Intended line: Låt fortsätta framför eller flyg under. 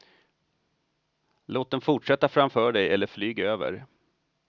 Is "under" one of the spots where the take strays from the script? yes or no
yes